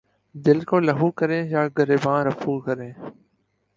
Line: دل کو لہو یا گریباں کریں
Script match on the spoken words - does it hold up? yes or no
no